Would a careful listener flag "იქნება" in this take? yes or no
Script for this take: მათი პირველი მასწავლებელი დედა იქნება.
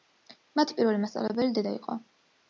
yes